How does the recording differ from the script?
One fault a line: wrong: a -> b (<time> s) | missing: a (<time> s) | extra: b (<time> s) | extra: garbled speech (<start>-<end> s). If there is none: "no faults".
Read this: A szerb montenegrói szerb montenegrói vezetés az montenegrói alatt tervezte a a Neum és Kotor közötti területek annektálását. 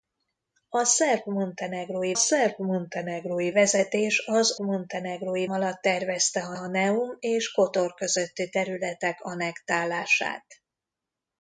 no faults